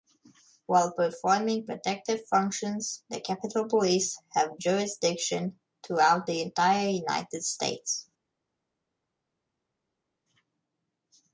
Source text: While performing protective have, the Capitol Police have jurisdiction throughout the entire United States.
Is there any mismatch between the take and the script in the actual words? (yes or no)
yes